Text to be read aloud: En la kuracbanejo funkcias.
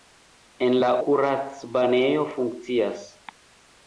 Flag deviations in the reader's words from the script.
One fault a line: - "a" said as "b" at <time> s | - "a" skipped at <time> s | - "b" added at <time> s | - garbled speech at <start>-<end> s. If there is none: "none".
none